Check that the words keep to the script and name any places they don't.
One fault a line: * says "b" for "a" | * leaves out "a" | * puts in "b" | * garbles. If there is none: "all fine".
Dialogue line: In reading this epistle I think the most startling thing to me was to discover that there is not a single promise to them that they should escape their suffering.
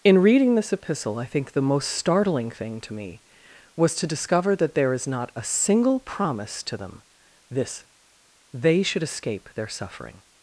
* says "this" for "that"